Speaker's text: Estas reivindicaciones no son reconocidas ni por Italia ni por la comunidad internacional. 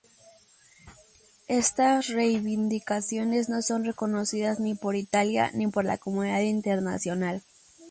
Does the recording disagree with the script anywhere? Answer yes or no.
no